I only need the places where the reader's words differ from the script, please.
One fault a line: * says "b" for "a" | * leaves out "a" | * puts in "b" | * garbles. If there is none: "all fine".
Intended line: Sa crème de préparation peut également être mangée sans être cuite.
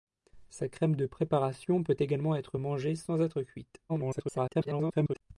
* garbles